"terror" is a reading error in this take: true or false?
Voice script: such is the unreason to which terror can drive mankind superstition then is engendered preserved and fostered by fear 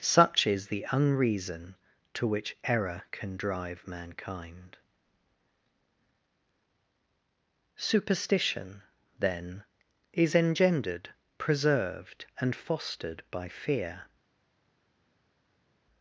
true